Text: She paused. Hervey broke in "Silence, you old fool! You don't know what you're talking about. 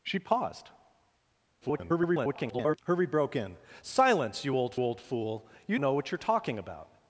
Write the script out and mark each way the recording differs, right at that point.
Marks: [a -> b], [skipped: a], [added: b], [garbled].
She paused. [garbled] Hervey broke in "Silence, you old [added: old] fool! You [skipped: don't] know what you're talking about.